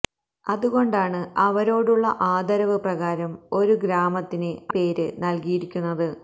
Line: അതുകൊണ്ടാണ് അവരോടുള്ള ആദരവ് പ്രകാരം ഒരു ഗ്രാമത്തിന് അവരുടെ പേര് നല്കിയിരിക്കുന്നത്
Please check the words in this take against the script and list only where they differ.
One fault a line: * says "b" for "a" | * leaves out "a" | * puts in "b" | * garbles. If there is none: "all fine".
* leaves out "അവരുടെ"